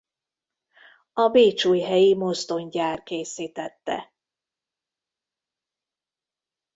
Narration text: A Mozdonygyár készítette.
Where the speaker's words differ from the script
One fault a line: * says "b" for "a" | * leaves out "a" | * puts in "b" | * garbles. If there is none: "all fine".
* puts in "Bécsújhelyi"